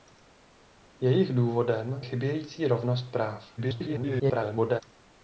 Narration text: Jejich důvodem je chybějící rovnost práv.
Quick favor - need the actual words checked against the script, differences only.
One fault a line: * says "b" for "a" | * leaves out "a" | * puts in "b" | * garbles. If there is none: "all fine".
* leaves out "je"
* garbles